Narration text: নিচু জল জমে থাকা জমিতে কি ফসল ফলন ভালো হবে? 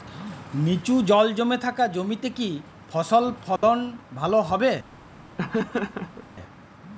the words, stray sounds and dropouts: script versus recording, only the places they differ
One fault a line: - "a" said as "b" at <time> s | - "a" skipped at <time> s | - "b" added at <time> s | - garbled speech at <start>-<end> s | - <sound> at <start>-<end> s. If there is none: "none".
- dropout at 3.6-3.6 s
- laugh at 5.4-6.3 s